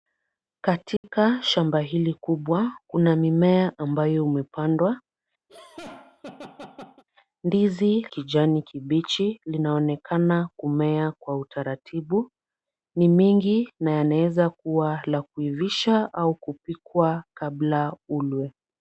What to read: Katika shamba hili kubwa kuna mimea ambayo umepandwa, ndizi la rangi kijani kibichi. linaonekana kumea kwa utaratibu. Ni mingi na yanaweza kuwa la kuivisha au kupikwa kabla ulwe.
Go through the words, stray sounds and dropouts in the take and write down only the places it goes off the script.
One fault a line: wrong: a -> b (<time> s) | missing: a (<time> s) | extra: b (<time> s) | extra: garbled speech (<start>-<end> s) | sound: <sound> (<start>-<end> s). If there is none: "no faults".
sound: dropout (1.0-1.0 s)
sound: laugh (5.5-7.0 s)
missing: la rangi (8.1 s)